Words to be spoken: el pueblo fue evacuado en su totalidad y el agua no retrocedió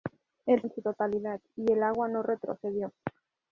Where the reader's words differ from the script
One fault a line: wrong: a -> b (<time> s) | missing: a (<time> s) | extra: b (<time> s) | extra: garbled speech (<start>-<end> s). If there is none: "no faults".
missing: pueblo fue evacuado (0.6 s)